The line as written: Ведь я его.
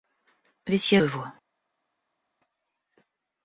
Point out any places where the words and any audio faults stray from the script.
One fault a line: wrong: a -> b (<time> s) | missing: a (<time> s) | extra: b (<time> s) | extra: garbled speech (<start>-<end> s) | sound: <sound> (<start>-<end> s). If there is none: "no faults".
no faults